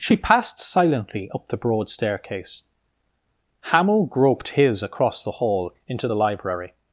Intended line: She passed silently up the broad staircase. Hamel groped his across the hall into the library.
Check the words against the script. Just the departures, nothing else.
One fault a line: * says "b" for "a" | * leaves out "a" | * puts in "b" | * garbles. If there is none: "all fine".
all fine